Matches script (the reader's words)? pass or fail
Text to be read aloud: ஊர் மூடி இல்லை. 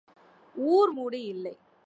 pass